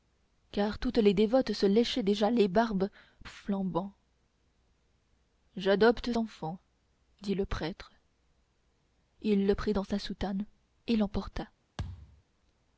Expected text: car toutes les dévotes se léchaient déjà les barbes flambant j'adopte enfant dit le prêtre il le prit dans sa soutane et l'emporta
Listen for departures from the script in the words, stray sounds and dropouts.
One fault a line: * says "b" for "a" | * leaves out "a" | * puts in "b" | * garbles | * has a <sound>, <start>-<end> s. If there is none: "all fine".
* has a thud, 11.8-12.2 s